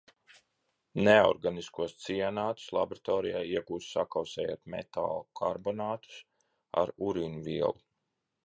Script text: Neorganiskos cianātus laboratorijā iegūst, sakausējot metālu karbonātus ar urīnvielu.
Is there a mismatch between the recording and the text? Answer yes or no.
no